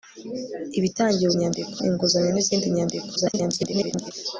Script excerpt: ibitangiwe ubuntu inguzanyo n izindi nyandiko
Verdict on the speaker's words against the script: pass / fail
fail